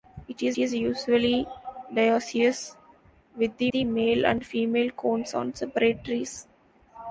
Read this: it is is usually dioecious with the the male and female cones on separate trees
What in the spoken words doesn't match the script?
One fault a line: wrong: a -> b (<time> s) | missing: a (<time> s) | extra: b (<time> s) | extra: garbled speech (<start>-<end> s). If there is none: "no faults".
no faults